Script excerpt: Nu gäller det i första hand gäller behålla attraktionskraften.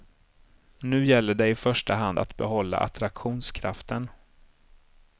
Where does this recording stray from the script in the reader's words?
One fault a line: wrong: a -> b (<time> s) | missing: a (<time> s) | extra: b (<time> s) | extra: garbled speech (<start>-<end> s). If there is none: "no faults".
wrong: gäller -> att (2.2 s)